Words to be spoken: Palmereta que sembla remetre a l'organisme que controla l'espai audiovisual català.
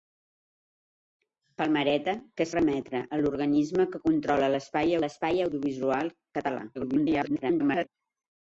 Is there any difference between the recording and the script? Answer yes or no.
yes